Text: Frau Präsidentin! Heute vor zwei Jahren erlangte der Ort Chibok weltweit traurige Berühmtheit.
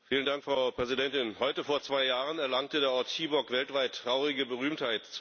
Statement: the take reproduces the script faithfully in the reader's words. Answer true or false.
true